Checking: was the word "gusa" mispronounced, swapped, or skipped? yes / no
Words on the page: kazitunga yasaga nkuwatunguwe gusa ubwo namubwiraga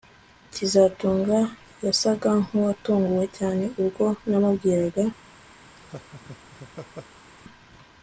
yes